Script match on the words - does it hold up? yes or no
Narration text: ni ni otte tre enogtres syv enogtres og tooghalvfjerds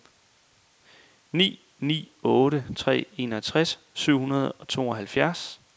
no